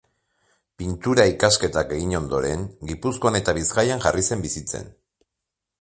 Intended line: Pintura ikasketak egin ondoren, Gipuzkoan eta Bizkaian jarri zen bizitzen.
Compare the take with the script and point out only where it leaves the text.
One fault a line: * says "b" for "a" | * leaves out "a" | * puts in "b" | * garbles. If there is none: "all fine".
all fine